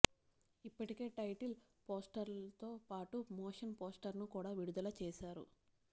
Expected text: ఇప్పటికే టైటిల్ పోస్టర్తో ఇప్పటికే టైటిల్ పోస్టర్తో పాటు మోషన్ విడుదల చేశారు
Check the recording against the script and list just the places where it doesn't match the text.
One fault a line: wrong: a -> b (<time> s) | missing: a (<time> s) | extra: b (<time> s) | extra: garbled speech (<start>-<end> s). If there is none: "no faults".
wrong: ఇప్పటికే టైటిల్ పోస్టర్తో పాటు మోషన్ -> పాటు మోషన్ పోస్టర్ను కూడా (2.9 s)